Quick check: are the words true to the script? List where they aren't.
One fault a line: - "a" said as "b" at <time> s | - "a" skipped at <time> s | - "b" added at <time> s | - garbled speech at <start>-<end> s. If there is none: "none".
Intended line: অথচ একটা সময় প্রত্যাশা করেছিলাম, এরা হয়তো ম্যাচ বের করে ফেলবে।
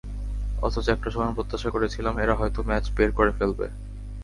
none